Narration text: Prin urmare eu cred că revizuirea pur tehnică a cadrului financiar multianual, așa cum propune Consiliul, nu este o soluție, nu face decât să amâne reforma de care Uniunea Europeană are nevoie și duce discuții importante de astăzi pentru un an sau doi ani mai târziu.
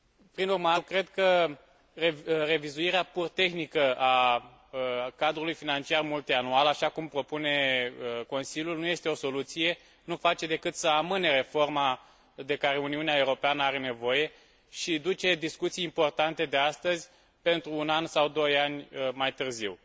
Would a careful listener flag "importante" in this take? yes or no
no